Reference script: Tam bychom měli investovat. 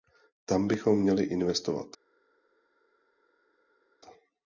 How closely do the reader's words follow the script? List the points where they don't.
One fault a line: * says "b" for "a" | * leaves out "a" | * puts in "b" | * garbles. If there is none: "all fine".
all fine